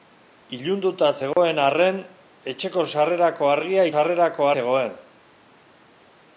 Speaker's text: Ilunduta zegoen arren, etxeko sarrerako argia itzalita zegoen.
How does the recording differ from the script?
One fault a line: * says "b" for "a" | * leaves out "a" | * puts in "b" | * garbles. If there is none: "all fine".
* says "sarrerako" for "itzalita"